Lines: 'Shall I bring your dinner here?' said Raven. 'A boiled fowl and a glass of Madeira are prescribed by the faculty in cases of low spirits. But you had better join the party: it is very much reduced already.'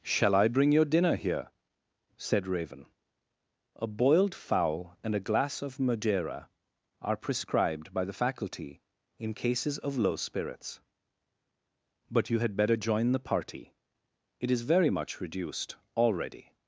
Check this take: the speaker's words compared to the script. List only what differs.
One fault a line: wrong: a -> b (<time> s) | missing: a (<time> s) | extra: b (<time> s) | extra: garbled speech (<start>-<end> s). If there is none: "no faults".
no faults